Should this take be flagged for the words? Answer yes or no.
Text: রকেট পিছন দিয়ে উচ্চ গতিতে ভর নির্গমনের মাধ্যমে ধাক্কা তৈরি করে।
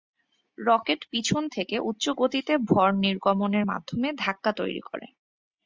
yes